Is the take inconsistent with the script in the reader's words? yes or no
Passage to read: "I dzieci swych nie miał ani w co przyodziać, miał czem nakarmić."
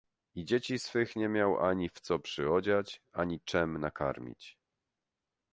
yes